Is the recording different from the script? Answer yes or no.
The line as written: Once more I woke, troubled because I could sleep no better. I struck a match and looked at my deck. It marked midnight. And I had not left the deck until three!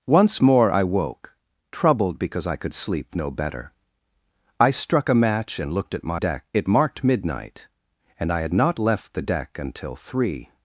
no